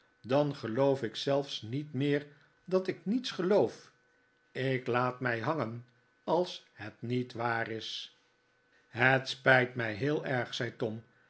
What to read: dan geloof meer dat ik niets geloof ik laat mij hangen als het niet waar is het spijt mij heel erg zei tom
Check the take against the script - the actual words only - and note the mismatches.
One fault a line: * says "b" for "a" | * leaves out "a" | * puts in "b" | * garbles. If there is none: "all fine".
* puts in "ik zelfs niet"